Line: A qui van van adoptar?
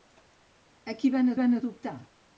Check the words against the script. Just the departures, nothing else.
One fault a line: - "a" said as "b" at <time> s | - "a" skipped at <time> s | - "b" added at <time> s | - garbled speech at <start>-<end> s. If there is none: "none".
none